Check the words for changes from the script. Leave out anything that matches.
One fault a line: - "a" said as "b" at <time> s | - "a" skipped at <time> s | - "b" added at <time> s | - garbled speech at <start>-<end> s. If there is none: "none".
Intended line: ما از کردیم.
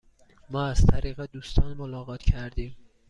- "طریق دوستان ملاقات" added at 0.8 s